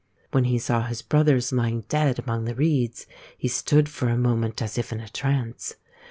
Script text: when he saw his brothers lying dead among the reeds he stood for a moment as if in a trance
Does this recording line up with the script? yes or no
yes